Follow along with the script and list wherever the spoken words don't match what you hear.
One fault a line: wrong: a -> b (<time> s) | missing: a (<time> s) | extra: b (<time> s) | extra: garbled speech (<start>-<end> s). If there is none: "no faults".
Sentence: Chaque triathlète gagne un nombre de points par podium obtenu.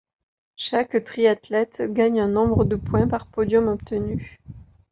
no faults